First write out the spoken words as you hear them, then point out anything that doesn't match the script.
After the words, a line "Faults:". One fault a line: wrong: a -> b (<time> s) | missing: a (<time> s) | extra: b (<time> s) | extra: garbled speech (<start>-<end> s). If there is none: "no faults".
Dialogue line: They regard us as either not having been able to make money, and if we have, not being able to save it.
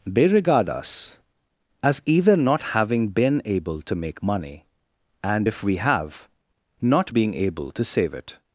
They regard us as either not having been able to make money, and if we have, not being able to save it.
Faults:
no faults